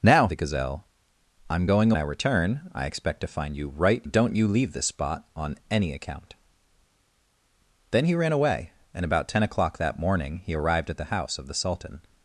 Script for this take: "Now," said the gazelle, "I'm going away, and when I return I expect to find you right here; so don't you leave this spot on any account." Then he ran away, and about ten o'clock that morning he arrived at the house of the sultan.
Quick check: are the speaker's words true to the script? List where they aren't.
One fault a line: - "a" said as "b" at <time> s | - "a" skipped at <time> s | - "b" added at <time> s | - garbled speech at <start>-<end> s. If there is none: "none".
- "said" skipped at 0.3 s
- "away and when" skipped at 1.9 s
- "here so" skipped at 4.1 s